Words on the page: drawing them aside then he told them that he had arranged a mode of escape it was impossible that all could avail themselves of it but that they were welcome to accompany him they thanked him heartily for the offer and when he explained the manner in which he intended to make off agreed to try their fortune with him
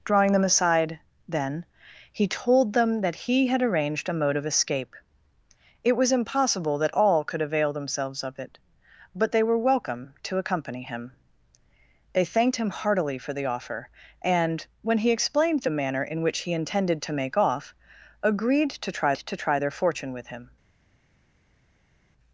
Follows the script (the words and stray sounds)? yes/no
no